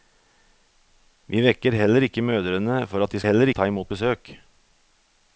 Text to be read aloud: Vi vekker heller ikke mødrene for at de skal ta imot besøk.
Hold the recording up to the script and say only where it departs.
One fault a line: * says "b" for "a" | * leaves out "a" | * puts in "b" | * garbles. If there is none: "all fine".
* says "heller" for "skal"